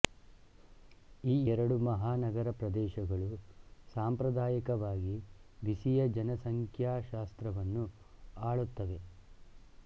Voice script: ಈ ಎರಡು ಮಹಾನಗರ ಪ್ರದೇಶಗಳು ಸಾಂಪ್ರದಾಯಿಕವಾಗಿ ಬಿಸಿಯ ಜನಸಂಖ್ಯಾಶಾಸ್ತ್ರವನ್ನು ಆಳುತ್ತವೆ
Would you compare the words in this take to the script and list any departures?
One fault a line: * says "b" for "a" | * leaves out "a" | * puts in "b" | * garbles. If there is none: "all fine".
all fine